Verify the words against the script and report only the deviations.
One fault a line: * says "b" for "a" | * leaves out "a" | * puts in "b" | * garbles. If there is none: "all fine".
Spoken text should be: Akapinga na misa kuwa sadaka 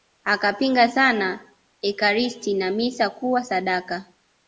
* puts in "sana Ekaristi"